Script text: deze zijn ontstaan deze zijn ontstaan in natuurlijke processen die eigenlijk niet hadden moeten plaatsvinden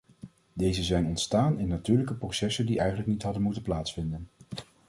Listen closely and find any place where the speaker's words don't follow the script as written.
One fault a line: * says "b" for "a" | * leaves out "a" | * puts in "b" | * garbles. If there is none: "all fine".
* leaves out "deze zijn ontstaan"